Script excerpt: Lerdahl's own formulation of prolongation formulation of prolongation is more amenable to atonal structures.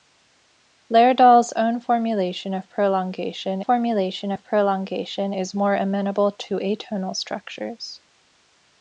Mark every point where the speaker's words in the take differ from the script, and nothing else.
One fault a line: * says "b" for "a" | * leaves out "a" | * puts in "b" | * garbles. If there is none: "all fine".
all fine